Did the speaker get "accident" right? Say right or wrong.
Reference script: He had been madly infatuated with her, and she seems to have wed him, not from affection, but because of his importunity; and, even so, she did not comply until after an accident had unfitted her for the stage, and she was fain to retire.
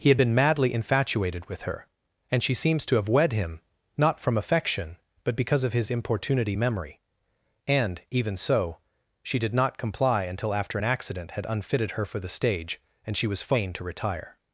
right